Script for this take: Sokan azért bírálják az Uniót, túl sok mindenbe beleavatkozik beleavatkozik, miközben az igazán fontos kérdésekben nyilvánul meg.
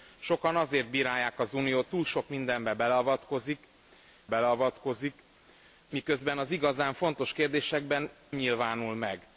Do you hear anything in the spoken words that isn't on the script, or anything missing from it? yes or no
no